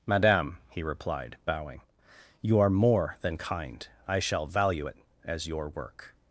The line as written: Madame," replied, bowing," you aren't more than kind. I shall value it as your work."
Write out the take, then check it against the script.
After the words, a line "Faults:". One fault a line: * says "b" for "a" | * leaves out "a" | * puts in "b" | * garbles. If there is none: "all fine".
Madame," he replied, bowing," you are more than kind. I shall value it as your work."
Faults:
* puts in "he"
* says "are" for "aren't"